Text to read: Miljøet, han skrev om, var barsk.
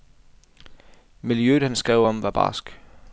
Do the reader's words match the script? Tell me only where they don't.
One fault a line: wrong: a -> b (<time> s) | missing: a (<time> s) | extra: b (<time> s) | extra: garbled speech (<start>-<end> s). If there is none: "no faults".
no faults